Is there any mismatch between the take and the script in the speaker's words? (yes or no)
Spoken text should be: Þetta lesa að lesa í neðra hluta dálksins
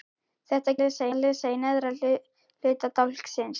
no